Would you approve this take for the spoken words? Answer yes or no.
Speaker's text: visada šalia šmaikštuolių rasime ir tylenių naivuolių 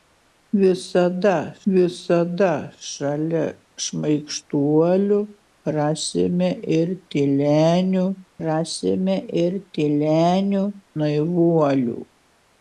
no